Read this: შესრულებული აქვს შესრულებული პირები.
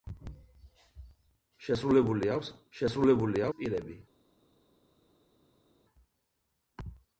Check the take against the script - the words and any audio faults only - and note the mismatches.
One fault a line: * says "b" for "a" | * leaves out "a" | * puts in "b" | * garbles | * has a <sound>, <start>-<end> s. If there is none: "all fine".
all fine